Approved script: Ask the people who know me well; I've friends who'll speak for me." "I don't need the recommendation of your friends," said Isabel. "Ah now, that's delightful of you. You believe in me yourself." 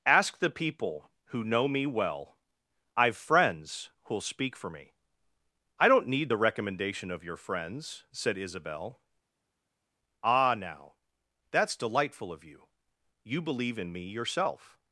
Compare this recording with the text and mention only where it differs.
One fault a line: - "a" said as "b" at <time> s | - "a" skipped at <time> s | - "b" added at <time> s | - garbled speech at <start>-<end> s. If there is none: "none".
none